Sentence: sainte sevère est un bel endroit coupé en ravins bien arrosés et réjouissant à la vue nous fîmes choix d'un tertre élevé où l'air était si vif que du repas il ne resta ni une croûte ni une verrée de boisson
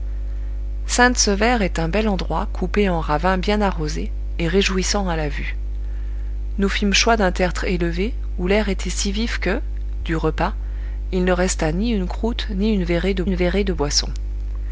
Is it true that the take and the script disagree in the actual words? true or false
true